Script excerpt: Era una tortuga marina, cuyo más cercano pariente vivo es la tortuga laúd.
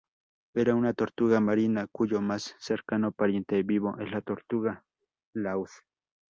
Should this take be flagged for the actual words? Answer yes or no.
no